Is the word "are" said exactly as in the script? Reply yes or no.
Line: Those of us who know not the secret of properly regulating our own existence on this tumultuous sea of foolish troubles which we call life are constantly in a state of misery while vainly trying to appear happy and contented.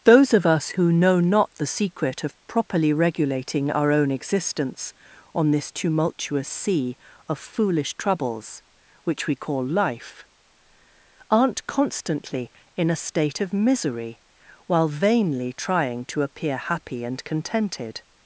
no